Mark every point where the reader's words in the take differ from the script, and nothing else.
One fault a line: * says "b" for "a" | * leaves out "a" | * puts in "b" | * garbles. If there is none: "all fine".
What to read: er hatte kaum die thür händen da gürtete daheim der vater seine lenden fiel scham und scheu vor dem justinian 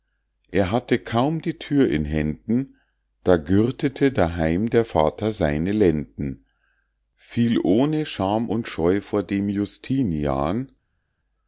* puts in "in"
* puts in "ohne"